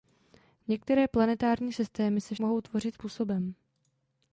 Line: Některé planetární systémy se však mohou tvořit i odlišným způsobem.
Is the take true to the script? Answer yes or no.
no